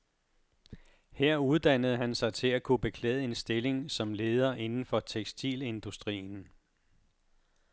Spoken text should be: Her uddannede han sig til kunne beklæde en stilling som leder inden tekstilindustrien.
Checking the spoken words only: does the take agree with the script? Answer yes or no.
no